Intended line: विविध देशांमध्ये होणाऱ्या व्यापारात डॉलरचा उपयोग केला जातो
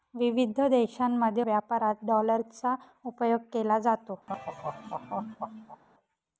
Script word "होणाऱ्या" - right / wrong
wrong